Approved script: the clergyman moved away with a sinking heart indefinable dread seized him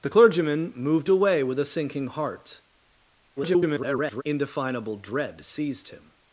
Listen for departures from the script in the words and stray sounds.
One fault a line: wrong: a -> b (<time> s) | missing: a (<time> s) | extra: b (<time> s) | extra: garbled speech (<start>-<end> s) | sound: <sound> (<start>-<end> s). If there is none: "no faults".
extra: garbled speech (3.4-4.2 s)